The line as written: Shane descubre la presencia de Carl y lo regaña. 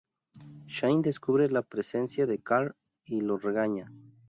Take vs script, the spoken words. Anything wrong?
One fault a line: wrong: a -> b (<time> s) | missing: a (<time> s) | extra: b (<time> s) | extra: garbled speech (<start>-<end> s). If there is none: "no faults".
no faults